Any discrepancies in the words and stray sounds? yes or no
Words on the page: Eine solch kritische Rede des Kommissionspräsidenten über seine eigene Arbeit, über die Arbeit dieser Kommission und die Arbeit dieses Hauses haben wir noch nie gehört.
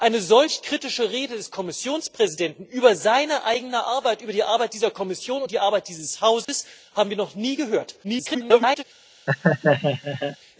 yes